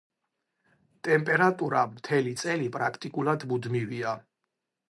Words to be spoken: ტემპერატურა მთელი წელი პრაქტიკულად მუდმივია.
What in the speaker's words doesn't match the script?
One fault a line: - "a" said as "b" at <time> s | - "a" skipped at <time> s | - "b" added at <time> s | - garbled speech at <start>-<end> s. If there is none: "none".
none